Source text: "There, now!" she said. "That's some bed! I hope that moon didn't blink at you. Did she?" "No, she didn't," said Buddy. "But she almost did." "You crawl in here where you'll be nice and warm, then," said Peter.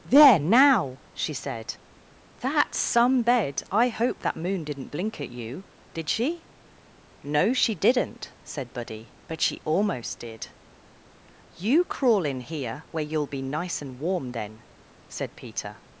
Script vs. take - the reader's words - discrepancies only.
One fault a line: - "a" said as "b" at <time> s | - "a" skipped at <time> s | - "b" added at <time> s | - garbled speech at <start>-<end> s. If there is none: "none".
none